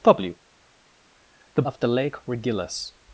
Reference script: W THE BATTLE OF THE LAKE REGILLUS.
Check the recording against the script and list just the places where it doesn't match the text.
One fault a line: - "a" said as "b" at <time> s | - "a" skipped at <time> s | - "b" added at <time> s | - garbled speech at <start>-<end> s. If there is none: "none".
- "BATTLE" skipped at 1.6 s